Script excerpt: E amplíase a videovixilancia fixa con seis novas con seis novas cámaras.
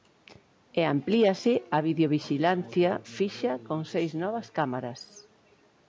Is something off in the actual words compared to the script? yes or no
yes